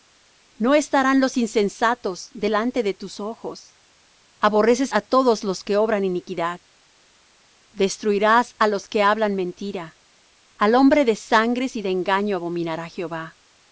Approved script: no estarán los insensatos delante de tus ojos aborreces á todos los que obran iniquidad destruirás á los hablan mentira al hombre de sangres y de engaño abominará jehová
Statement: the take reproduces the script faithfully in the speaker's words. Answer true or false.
false